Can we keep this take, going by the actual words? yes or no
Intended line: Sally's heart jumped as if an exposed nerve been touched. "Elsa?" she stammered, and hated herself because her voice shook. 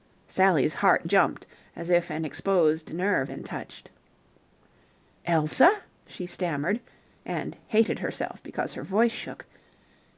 yes